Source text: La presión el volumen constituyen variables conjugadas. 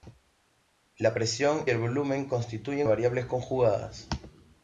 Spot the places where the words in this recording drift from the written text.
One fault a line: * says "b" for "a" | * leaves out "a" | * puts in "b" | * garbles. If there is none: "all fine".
all fine